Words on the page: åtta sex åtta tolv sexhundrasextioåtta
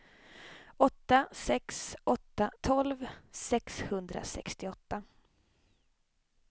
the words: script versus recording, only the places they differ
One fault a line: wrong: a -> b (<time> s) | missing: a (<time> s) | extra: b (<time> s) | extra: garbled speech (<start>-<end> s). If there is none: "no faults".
no faults